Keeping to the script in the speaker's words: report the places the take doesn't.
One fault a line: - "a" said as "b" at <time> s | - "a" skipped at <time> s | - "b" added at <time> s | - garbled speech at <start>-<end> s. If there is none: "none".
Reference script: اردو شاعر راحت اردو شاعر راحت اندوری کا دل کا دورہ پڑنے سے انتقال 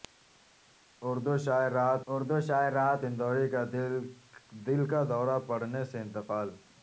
none